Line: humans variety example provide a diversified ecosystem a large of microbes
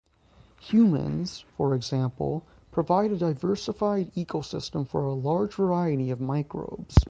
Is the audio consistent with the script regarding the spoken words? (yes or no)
no